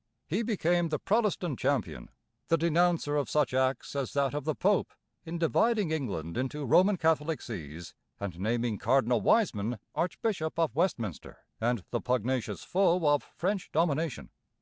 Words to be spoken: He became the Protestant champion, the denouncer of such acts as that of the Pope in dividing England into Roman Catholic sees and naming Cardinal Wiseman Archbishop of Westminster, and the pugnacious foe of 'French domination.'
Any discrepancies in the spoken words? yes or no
no